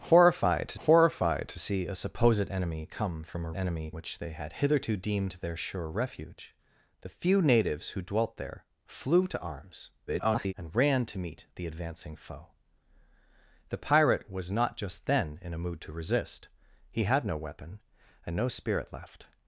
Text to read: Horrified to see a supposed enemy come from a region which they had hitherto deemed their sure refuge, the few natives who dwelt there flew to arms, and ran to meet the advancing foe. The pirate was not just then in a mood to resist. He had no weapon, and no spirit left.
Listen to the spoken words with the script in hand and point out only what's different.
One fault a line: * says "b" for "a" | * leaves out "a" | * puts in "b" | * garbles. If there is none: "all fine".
* puts in "horrified to"
* says "enemy" for "region"
* garbles